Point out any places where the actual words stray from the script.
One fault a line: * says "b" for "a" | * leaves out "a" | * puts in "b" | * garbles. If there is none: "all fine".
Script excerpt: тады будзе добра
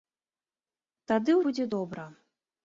all fine